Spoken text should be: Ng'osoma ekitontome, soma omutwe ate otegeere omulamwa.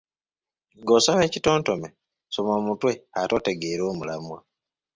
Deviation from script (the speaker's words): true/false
false